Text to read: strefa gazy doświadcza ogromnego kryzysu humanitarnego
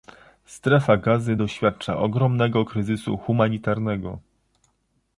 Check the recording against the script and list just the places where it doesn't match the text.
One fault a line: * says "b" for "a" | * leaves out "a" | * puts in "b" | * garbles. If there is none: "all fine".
all fine